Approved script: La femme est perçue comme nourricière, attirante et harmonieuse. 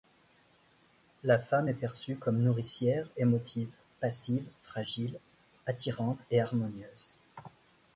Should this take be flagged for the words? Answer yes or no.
yes